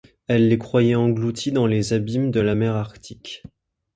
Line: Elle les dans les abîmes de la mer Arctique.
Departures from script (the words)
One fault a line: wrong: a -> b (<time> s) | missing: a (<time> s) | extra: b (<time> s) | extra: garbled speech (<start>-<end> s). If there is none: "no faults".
extra: croyait engloutis (0.6 s)